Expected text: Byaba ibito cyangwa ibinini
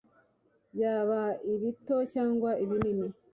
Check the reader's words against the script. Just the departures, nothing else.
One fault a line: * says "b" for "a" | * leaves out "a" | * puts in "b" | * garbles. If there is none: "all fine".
all fine